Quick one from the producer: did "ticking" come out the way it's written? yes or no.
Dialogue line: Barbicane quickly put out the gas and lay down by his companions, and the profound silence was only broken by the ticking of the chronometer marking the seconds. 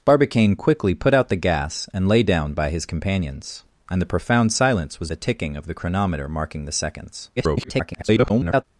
yes